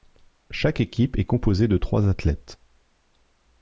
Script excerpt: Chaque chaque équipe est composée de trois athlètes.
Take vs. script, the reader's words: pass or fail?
fail